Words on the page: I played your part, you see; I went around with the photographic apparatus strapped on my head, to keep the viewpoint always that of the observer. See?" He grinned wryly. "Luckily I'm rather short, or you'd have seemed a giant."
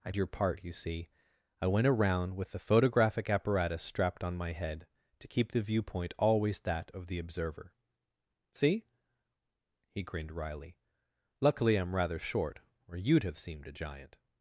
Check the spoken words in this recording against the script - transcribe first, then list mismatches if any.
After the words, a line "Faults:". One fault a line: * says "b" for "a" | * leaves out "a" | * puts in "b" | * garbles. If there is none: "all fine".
I your part, you see; I went around with the photographic apparatus strapped on my head, to keep the viewpoint always that of the observer. See?" He grinned wryly. "Luckily I'm rather short, or you'd have seemed a giant."
Faults:
* leaves out "played"